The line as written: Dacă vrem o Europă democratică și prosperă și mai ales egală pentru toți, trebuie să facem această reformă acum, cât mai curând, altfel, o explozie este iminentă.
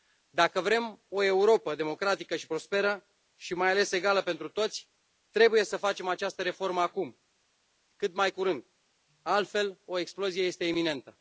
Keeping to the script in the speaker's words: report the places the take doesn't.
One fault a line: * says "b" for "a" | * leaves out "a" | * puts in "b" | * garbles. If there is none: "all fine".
all fine